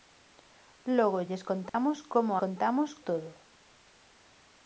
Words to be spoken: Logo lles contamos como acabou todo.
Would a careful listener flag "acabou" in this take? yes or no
yes